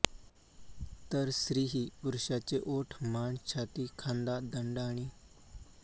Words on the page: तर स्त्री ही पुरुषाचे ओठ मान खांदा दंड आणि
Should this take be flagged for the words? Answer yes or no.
yes